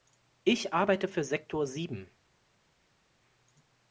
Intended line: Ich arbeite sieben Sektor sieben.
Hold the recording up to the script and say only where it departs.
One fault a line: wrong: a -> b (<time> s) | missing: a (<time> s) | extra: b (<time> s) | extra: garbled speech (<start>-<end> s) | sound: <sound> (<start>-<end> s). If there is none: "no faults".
wrong: sieben -> für (1.1 s)